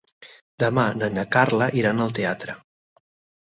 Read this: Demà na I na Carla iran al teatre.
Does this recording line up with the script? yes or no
yes